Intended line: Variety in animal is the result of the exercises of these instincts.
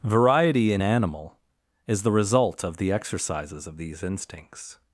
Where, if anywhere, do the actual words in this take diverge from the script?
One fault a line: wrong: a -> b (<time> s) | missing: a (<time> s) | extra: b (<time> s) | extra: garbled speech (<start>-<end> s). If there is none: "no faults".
no faults